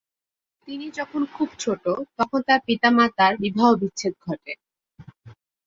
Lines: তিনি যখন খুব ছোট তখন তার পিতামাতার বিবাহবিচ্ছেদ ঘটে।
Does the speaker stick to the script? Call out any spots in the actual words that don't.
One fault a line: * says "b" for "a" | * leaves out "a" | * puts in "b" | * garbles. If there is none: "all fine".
all fine